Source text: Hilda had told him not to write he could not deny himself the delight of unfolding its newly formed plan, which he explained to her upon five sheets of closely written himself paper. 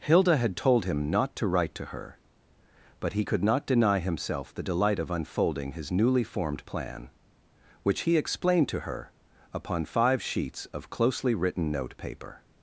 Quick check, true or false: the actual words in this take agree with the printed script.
false